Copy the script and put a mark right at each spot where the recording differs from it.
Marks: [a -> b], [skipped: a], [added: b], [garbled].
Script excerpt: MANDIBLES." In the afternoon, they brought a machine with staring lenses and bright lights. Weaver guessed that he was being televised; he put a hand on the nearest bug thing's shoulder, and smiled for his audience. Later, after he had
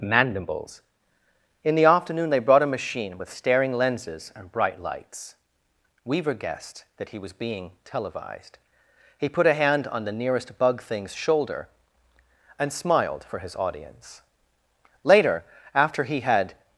MANDIBLES." In the afternoon, they brought a machine with staring lenses and bright lights. Weaver guessed that he was being televised; he put a hand on the nearest bug thing's shoulder, and smiled for his audience. Later, after he had